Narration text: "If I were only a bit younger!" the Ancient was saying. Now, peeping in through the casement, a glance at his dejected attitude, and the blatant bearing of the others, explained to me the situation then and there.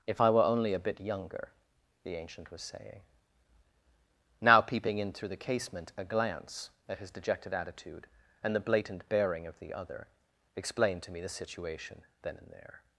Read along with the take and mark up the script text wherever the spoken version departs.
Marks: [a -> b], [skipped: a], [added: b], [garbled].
"If I were only a bit younger!" the Ancient was saying. Now, peeping in through the casement, a glance at his dejected attitude, and the blatant bearing of the [others, -> other] explained to me the situation then and there.